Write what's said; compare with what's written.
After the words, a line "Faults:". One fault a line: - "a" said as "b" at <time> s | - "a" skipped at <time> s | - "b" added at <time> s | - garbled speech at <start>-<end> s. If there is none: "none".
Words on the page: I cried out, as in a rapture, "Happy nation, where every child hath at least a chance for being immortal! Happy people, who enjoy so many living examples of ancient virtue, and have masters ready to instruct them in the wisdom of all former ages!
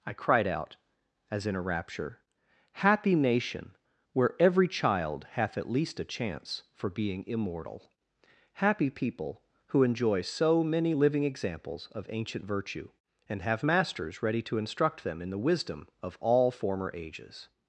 I cried out, as in a rapture, "Happy nation, where every child hath at least a chance for being immortal! Happy people, who enjoy so many living examples of ancient virtue, and have masters ready to instruct them in the wisdom of all former ages!
Faults:
none